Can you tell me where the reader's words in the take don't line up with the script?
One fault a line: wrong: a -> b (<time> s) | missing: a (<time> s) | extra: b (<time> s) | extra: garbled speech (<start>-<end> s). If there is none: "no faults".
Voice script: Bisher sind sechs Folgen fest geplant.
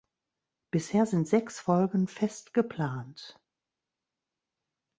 no faults